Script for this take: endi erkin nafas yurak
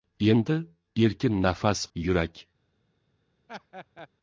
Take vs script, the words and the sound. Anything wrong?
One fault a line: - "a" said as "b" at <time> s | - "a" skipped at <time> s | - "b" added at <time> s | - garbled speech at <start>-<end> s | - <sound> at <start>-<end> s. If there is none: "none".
- laugh at 3.5-4.1 s